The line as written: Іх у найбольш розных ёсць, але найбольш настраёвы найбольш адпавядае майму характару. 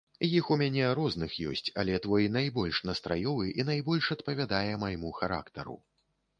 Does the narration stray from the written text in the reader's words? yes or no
yes